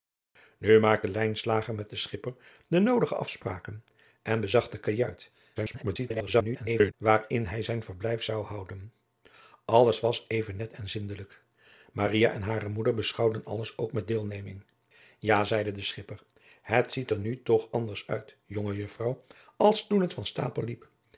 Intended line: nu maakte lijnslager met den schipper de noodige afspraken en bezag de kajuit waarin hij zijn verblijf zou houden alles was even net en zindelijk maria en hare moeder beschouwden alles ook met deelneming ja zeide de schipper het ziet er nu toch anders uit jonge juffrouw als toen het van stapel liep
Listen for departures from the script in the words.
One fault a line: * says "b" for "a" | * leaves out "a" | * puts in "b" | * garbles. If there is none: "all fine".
* garbles